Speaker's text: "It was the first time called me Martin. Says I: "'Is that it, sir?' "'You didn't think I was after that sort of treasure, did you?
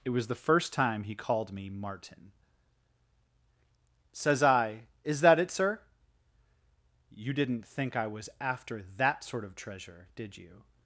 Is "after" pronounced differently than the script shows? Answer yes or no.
no